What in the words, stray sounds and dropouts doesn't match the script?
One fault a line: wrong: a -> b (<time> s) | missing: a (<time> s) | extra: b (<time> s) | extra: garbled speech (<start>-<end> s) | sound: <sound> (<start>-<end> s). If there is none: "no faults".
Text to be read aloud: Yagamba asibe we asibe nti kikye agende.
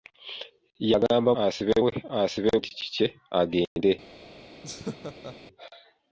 sound: dropout (3.7-3.8 s)
sound: laugh (4.6-5.4 s)